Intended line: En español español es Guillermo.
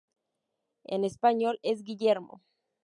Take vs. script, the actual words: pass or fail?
fail